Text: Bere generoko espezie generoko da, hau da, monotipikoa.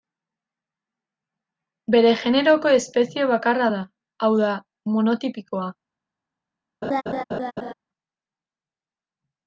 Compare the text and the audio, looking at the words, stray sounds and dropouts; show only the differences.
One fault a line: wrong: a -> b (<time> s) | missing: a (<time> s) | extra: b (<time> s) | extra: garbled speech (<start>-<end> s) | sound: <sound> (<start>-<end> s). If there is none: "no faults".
wrong: generoko -> bakarra (3.3 s)
sound: laugh (6.8-7.7 s)